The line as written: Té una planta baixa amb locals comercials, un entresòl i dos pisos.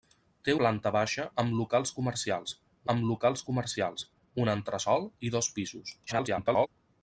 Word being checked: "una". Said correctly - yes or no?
no